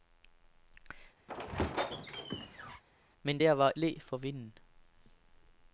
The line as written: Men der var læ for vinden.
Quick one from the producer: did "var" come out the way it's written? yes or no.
yes